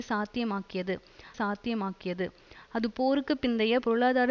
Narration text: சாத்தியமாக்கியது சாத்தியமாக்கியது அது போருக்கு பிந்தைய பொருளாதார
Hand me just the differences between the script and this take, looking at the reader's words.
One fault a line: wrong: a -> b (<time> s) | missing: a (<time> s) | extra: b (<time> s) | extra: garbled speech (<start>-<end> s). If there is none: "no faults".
no faults